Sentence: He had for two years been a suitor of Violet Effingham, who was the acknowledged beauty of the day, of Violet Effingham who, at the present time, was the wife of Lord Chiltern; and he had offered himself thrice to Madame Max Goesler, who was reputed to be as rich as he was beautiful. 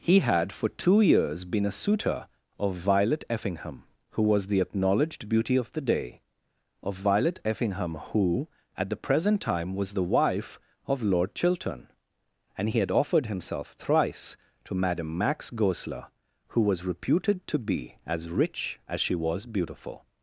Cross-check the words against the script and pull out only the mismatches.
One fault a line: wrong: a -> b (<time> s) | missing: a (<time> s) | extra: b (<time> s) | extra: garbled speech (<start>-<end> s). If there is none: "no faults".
wrong: he -> she (19.0 s)